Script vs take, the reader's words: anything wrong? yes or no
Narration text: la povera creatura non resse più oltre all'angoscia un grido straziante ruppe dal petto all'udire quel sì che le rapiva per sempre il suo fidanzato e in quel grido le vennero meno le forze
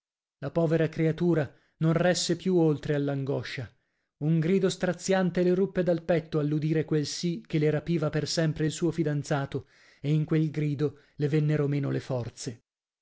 yes